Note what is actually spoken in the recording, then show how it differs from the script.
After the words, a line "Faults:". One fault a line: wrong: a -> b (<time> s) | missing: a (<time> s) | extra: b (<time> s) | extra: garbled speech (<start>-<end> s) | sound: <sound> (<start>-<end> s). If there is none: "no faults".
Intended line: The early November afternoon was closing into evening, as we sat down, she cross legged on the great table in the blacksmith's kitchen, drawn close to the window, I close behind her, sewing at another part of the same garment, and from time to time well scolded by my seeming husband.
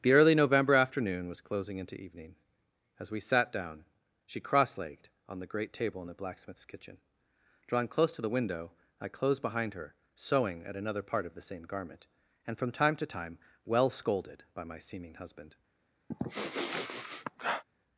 The early November afternoon was closing into evening, as we sat down, she cross legged on the great table in the blacksmith's kitchen, drawn close to the window, I closed behind her, sewing at another part of the same garment, and from time to time well scolded by my seeming husband.
Faults:
wrong: close -> closed (9.1 s)
sound: sniff (16.1-17.6 s)